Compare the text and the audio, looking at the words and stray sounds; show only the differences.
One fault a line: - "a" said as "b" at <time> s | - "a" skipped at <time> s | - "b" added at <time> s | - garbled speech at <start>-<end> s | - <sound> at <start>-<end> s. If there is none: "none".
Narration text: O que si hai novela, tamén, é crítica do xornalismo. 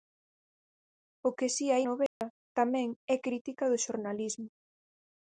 - dropout at 2.1-2.2 s